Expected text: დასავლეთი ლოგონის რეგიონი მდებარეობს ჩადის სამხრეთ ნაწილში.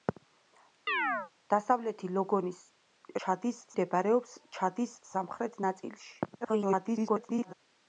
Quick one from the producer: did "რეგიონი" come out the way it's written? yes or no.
no